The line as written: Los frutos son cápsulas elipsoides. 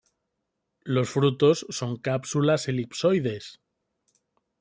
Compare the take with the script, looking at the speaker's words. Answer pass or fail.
pass